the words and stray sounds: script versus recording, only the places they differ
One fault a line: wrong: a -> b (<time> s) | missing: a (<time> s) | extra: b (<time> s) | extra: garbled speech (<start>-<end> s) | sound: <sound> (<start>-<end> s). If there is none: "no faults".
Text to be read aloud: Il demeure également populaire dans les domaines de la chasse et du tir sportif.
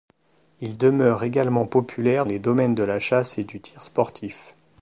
missing: dans (2.2 s)